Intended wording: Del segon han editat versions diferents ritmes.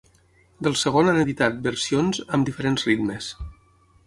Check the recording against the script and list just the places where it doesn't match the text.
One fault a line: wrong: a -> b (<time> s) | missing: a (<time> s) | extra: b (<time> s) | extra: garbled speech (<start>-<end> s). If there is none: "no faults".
extra: amb (2.4 s)